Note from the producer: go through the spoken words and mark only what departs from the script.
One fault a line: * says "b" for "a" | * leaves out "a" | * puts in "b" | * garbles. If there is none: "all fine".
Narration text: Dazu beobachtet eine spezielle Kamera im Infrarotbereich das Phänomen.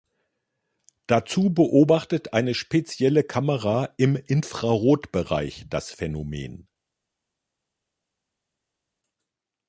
all fine